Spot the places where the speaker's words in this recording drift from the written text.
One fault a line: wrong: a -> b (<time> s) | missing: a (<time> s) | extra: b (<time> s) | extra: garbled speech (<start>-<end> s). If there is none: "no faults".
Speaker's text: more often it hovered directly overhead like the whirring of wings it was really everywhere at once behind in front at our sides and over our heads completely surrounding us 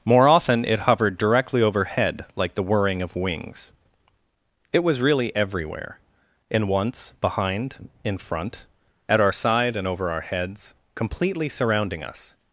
wrong: at -> in (6.5 s)
wrong: sides -> side (9.3 s)